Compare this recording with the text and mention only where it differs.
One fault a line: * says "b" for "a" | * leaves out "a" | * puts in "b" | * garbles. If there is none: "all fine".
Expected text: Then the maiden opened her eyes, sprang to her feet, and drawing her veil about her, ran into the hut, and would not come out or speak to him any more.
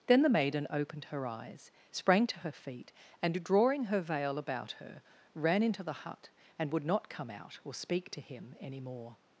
all fine